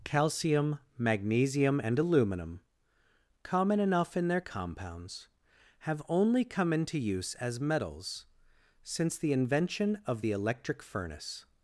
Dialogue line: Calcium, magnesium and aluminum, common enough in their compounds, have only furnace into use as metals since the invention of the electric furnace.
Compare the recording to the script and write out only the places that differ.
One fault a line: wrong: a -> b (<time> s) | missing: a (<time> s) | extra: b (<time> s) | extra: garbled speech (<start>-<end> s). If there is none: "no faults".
wrong: furnace -> come (6.4 s)